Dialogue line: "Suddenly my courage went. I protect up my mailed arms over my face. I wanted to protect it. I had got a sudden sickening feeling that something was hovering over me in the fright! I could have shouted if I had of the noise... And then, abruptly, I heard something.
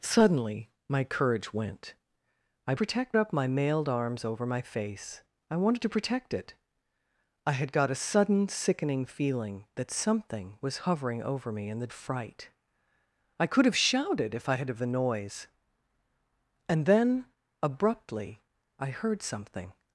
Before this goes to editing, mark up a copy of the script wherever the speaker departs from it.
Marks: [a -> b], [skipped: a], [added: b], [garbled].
"Suddenly my courage went. I protect up my mailed arms over my face. I wanted to protect it. I had got a sudden sickening feeling that something was hovering over me in the fright! I could have shouted if I had of the noise... And then, abruptly, I heard something.